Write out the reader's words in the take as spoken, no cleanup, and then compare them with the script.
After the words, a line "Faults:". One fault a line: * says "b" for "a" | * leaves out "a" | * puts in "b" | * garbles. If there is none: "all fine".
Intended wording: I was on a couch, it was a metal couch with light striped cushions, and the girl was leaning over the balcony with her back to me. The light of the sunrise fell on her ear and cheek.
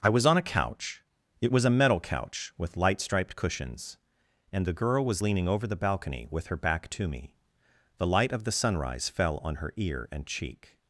I was on a couch, it was a metal couch with light striped cushions, and the girl was leaning over the balcony with her back to me. The light of the sunrise fell on her ear and cheek.
Faults:
all fine